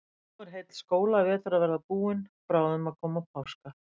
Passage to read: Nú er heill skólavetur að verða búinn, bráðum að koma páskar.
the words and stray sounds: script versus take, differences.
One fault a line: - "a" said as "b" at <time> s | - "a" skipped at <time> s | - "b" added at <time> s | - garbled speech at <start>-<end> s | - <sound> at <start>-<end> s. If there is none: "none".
none